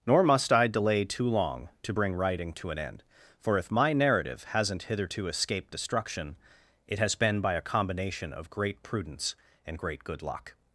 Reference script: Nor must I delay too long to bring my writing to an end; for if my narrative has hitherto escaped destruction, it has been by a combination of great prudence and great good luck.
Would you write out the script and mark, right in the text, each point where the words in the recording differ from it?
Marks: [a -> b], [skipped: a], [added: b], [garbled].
Nor must I delay too long to bring [skipped: my] writing to an end; for if my narrative [has -> hasn't] hitherto escaped destruction, it has been by a combination of great prudence and great good luck.